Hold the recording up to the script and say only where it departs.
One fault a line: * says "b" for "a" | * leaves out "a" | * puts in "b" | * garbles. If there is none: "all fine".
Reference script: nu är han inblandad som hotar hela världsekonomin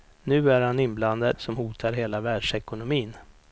all fine